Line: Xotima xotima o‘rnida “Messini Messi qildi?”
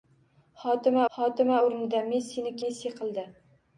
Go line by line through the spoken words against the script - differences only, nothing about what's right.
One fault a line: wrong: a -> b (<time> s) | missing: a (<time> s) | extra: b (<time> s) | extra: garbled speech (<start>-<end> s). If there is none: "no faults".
no faults